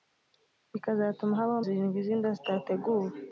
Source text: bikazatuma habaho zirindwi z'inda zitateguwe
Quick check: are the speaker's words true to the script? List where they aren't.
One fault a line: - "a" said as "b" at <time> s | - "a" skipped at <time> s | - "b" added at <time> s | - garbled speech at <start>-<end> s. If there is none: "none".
none